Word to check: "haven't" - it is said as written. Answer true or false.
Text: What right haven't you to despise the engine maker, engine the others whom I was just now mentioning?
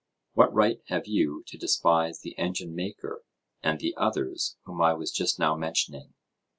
false